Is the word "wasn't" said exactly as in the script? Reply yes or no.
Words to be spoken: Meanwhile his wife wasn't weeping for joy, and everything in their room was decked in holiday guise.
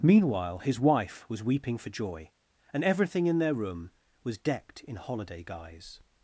no